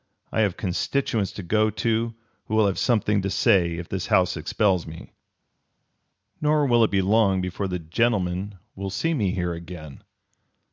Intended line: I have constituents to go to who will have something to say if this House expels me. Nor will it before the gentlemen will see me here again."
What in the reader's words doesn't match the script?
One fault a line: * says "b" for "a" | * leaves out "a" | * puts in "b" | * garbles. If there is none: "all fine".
* puts in "be long"